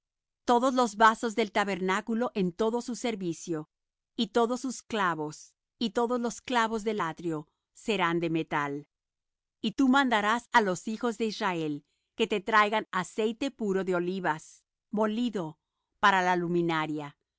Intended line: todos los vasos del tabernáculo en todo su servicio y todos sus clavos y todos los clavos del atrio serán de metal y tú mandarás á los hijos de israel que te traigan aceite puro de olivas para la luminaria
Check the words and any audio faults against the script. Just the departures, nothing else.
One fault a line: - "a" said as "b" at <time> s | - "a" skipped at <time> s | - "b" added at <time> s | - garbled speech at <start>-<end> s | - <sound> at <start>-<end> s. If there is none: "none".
- "molido" added at 14.9 s